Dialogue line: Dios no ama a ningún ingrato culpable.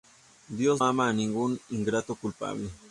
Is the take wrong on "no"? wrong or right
wrong